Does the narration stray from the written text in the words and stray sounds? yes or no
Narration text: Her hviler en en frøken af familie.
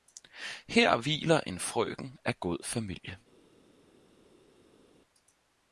yes